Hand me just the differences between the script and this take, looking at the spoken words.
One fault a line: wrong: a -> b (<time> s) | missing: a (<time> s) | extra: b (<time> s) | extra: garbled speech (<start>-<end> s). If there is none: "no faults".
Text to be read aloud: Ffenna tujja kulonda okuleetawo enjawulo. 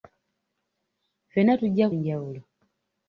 missing: kulonda okuleetawo (1.9 s)